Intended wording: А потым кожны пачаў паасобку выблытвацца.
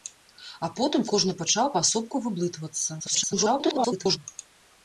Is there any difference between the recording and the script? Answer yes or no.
yes